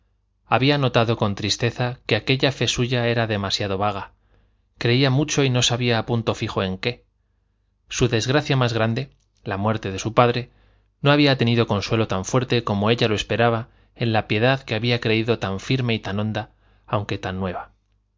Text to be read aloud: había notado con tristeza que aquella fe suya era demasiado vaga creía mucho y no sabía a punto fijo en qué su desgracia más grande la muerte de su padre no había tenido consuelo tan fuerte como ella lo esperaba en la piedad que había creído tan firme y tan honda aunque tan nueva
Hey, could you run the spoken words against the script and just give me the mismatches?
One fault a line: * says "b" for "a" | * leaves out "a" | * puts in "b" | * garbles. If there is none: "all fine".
all fine